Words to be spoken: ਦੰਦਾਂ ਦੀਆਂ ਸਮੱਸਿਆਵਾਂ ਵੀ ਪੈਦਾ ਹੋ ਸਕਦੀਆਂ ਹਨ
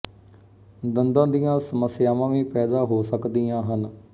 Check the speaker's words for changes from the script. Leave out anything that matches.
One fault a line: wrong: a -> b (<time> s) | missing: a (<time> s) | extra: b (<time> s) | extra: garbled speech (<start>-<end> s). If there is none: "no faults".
no faults